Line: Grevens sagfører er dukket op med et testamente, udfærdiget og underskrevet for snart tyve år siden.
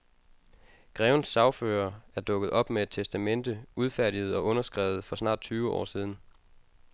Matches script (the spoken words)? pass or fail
pass